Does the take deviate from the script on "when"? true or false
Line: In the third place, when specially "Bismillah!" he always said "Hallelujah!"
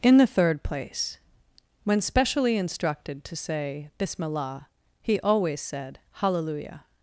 false